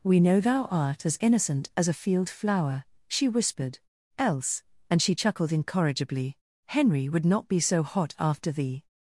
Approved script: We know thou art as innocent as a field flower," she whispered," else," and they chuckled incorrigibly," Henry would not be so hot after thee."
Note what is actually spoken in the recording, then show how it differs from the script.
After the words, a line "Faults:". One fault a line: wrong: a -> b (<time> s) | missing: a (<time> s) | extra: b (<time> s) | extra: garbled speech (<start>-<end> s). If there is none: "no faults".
We know thou art as innocent as a field flower," she whispered," else," and she chuckled incorrigibly," Henry would not be so hot after thee."
Faults:
wrong: they -> she (5.0 s)